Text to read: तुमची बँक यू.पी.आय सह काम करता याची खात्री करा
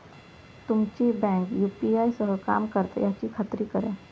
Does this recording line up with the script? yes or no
yes